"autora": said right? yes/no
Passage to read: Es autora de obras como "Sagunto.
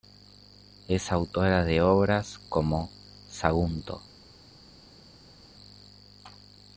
yes